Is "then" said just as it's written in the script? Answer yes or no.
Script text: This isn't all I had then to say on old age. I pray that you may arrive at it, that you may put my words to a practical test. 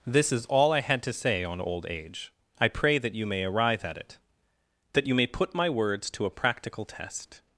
no